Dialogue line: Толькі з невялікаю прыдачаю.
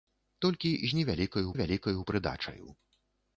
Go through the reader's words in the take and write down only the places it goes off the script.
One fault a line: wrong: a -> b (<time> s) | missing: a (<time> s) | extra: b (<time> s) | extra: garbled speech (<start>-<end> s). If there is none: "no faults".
extra: невялікаю (1.5 s)